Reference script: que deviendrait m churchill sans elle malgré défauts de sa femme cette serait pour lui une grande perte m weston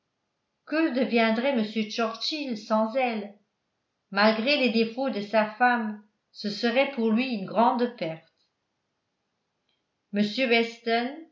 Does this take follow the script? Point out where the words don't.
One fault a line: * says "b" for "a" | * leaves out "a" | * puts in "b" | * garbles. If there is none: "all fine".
* puts in "les"
* says "ce" for "cette"